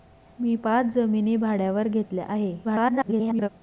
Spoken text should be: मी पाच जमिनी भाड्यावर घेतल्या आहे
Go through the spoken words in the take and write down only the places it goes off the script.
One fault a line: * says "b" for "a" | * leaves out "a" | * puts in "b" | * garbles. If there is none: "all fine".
* garbles